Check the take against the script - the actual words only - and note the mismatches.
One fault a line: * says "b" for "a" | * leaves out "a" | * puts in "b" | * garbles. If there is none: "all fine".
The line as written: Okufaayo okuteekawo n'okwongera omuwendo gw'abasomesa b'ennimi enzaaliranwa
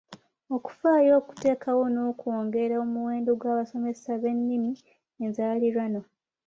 all fine